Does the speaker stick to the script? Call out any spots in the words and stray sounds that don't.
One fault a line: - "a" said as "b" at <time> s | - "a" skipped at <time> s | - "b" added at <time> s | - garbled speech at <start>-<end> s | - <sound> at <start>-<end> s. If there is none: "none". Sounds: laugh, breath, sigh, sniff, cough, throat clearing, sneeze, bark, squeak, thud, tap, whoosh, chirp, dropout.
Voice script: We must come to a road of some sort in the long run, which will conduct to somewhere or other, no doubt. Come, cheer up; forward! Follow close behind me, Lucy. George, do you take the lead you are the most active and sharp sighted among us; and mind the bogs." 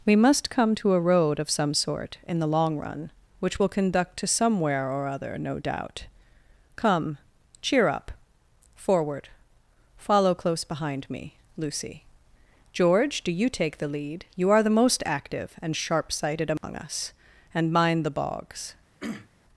- dropout at 16.6-16.6 s
- throat clearing at 19.0-19.3 s